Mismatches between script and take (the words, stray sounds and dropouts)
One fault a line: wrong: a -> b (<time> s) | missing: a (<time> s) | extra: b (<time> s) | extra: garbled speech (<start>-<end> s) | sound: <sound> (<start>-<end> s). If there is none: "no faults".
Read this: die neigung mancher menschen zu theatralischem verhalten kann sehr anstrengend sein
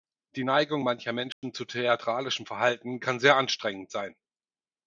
sound: dropout (1.3-1.4 s)